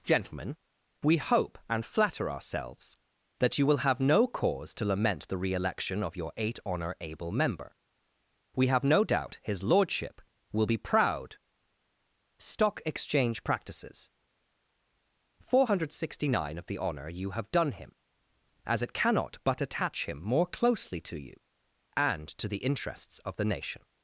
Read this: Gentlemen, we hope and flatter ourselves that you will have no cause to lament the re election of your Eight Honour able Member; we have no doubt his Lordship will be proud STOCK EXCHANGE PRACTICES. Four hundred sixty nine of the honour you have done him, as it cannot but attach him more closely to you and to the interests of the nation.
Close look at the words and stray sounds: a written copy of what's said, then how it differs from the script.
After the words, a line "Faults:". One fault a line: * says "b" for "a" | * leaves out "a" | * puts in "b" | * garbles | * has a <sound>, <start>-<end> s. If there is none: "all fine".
Gentlemen, we hope and flatter ourselves that you will have no cause to lament the re election of your Eight Honour able Member; we have no doubt his Lordship will be proud STOCK EXCHANGE PRACTICES. Four hundred sixty nine of the honour you have done him, as it cannot but attach him more closely to you and to the interests of the nation.
Faults:
all fine